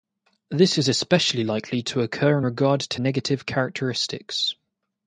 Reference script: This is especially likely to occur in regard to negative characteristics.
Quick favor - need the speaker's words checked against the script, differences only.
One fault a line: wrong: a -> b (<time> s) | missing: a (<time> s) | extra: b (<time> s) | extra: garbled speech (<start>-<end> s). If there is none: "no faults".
no faults